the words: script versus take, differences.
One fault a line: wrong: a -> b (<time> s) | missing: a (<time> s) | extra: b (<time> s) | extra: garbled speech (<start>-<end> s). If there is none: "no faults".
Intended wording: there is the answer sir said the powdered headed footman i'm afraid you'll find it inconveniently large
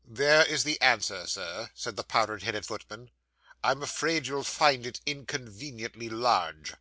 no faults